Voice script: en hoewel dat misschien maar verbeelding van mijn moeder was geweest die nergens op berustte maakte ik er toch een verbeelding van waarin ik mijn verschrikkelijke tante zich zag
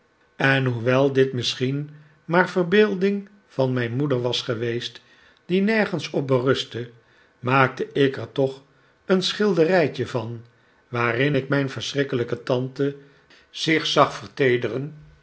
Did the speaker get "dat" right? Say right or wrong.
wrong